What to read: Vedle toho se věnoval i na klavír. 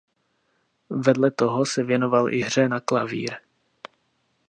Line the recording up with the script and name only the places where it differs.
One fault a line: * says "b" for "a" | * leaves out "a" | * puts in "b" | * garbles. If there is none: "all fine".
* puts in "hře"